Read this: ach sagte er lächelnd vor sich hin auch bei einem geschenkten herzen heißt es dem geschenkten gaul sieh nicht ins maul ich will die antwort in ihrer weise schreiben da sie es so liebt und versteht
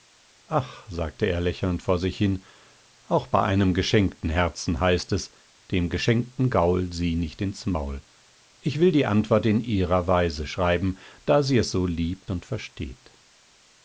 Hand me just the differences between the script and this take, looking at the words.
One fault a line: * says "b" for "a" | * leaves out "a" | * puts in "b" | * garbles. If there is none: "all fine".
all fine